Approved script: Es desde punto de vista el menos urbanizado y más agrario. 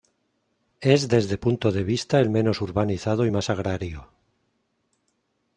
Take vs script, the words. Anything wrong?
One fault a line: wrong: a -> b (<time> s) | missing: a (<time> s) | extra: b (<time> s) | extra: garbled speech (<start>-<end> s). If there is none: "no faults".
no faults